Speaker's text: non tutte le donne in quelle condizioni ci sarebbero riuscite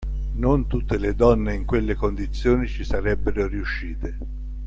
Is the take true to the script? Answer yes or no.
yes